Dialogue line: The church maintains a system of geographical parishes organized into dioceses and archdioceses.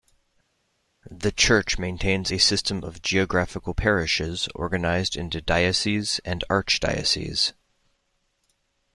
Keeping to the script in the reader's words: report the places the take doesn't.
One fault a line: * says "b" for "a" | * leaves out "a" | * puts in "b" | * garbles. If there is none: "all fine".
all fine